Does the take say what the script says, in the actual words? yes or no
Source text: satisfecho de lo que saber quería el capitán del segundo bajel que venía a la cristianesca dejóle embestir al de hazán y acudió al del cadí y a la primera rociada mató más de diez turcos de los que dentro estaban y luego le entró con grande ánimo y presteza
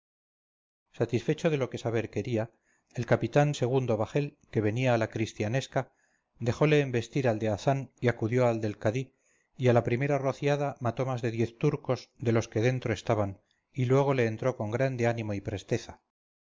no